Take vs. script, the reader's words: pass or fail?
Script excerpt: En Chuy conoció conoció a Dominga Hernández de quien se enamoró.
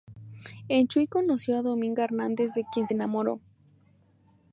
fail